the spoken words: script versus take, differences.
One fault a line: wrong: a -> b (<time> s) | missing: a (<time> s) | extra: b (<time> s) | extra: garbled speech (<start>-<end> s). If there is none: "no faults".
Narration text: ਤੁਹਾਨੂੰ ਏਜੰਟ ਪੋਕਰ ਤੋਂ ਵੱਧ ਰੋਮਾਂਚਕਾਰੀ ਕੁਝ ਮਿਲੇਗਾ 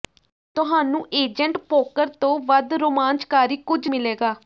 no faults